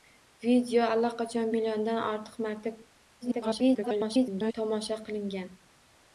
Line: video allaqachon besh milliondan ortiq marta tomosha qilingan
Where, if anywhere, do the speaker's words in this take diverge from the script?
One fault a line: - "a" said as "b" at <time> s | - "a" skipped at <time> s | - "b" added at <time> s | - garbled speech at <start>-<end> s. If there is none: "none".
- "besh" skipped at 1.5 s
- garbled speech at 3.2-4.5 s